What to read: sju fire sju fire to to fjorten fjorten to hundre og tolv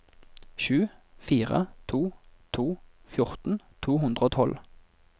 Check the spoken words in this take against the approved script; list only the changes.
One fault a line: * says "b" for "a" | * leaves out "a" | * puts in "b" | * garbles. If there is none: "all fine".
* leaves out "sju fire"
* leaves out "fjorten"